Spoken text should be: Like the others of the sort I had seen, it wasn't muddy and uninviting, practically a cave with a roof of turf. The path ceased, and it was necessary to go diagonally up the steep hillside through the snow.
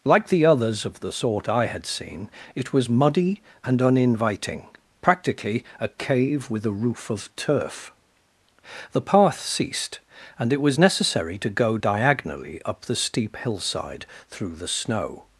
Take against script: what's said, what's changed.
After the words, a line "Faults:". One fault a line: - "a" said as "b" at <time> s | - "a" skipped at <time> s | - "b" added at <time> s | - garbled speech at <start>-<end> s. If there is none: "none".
Like the others of the sort I had seen, it was muddy and uninviting, practically a cave with a roof of turf. The path ceased, and it was necessary to go diagonally up the steep hillside through the snow.
Faults:
- "wasn't" said as "was" at 2.7 s